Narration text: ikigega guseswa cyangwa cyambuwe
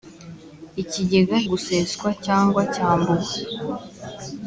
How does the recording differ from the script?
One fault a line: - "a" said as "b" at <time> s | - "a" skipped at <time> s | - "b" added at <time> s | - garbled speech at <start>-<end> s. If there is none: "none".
none